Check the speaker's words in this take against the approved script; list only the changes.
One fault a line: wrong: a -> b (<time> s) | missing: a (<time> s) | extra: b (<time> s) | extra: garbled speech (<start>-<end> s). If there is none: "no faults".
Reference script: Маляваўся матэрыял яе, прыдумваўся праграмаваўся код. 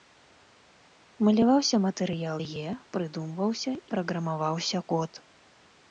no faults